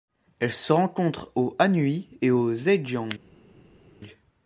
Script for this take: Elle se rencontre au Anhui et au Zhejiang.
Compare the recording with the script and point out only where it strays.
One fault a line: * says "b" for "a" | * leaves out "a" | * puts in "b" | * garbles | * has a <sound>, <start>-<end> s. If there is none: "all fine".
all fine